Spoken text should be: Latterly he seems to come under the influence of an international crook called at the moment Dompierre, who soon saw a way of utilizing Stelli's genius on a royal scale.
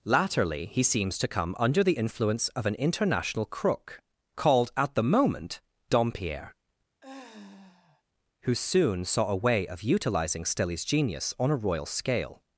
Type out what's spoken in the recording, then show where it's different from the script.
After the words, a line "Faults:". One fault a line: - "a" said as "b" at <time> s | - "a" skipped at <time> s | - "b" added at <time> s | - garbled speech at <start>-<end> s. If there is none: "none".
Latterly he seems to come under the influence of an international crook called at the moment Dompierre, who soon saw a way of utilizing Stelli's genius on a royal scale.
Faults:
none